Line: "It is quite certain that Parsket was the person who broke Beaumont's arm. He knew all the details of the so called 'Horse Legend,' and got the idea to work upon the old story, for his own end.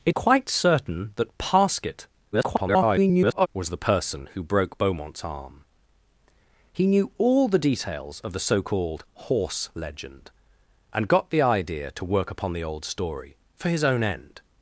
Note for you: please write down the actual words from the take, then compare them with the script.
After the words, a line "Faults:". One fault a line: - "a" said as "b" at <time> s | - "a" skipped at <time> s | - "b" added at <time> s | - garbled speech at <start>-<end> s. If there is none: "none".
"It quite certain that Parsket [garbled] was the person who broke Beaumont's arm. He knew all the details of the so called 'Horse Legend,' and got the idea to work upon the old story, for his own end.
Faults:
- "is" skipped at 0.1 s
- garbled speech at 2.3-3.5 s